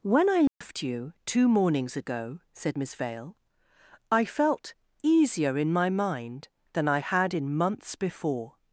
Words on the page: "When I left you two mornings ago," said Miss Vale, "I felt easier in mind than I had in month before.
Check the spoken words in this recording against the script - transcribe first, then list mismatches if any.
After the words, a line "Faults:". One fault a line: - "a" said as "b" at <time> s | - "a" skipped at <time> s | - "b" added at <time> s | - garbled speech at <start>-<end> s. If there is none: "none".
"When I left you two mornings ago," said Miss Vale, "I felt easier in my mind than I had in months before.
Faults:
- "my" added at 5.7 s
- "month" said as "months" at 7.6 s